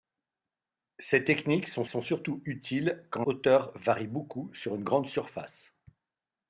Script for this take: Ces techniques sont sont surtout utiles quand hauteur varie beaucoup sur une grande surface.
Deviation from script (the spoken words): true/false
false